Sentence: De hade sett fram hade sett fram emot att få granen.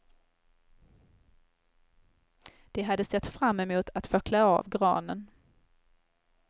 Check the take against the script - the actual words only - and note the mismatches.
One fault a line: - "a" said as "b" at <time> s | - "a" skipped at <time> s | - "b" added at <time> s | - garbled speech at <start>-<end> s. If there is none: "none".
- "hade sett fram" skipped at 3.6 s
- "klä av" added at 4.2 s